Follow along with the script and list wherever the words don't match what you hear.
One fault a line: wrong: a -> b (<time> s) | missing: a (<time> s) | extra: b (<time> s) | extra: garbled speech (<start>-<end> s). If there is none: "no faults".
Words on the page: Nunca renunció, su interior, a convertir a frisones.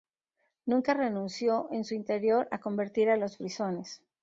extra: en (1.7 s)
extra: los (3.2 s)